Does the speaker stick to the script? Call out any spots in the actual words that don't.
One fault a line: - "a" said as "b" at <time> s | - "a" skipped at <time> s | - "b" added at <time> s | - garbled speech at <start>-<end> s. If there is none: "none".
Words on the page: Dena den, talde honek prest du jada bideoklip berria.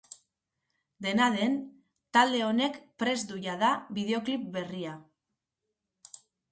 none